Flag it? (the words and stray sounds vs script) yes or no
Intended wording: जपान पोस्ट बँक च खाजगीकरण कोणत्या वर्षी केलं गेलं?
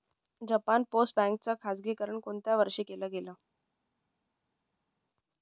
no